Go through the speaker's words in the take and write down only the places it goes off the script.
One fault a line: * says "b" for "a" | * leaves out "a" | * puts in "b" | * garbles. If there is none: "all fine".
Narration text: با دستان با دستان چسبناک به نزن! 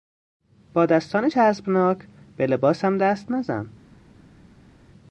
* says "چسبناک به لباسم دست" for "با دستان چسبناک به"